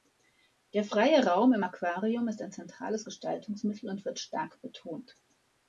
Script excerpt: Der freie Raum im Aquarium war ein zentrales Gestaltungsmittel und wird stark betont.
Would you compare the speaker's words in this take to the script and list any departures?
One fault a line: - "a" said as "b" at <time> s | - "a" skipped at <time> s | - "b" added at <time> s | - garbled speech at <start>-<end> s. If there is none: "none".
- "war" said as "ist" at 2.3 s